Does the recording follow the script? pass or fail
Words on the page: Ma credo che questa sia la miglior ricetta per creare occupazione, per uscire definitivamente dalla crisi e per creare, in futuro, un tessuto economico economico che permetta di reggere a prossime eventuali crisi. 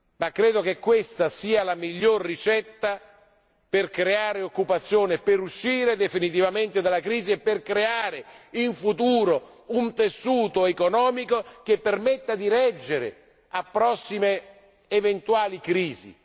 fail